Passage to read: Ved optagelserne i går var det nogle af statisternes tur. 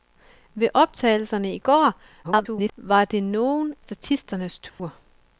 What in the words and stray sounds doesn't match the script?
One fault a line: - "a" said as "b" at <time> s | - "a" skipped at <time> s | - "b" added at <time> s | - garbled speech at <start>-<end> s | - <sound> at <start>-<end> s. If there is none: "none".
- garbled speech at 2.2-2.7 s
- "af" skipped at 3.7 s
- dropout at 4.7-4.8 s